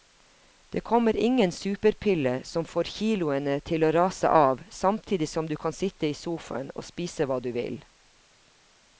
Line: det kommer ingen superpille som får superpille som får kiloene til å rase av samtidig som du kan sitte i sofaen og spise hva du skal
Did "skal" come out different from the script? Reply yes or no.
yes